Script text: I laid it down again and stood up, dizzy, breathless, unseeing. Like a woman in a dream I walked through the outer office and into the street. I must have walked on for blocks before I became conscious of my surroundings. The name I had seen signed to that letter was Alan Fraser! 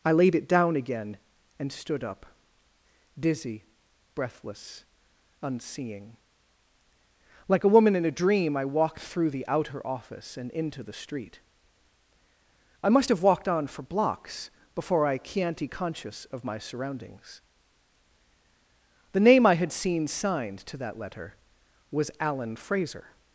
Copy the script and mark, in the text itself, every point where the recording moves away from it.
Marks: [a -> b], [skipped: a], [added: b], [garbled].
I laid it down again and stood up, dizzy, breathless, unseeing. Like a woman in a dream I walked through the outer office and into the street. I must have walked on for blocks before I [became -> chianti] conscious of my surroundings. The name I had seen signed to that letter was Alan Fraser!